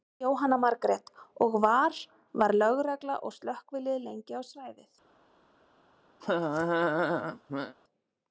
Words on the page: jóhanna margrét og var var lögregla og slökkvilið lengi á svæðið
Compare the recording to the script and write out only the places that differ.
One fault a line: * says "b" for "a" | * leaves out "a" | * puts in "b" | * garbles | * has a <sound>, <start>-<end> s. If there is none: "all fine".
* has a laugh, 6.2-7.8 s